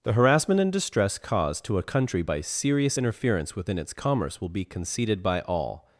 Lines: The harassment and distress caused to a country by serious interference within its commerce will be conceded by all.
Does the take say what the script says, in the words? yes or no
yes